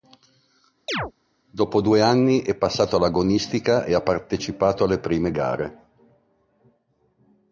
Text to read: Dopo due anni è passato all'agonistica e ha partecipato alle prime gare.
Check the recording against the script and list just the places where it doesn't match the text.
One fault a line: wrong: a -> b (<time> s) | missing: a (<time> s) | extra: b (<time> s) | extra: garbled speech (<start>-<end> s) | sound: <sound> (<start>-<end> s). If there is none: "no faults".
sound: chirp (0.9-1.1 s)